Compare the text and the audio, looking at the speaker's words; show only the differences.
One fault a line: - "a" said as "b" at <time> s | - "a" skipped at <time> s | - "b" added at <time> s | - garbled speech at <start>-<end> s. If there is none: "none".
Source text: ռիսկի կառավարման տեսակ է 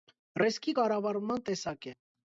none